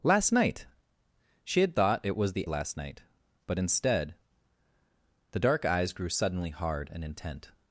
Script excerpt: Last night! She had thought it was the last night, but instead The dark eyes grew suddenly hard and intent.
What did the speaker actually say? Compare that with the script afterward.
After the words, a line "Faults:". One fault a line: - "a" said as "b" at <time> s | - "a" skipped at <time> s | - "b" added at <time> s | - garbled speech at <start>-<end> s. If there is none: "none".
Last night! She had thought it was the last night, but instead The dark eyes grew suddenly hard and intent.
Faults:
none